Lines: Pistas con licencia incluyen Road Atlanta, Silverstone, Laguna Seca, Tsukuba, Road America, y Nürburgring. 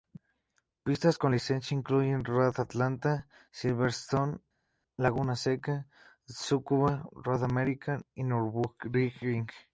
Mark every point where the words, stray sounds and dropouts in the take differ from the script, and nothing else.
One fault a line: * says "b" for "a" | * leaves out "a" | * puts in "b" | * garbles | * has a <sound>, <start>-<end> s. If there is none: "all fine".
all fine